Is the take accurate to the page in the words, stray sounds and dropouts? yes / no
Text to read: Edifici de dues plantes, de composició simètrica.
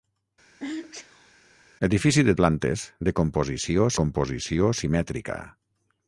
no